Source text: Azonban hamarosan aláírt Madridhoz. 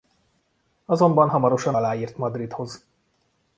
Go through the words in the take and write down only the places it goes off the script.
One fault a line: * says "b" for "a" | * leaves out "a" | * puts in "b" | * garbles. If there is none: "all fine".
all fine